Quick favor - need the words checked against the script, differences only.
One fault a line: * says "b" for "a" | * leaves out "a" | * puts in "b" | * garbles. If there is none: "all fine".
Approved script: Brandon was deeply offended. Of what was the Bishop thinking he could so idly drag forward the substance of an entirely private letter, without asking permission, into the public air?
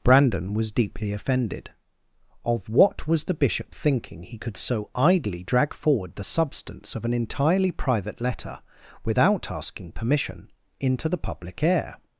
all fine